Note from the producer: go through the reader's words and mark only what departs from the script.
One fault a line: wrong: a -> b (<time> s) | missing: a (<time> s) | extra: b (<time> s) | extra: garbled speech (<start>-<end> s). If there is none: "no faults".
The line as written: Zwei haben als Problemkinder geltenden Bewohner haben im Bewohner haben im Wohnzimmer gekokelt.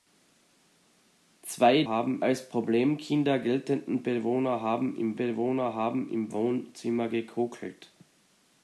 no faults